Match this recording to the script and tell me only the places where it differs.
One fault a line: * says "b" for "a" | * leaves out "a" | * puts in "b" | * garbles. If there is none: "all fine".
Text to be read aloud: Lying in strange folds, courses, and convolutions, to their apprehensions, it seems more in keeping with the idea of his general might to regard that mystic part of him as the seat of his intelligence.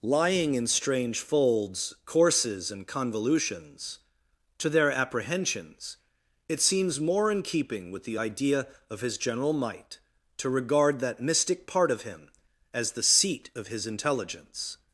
all fine